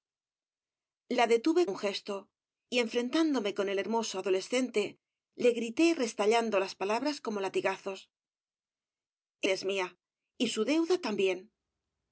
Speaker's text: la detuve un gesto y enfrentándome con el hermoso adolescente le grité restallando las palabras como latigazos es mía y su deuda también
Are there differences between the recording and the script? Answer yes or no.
no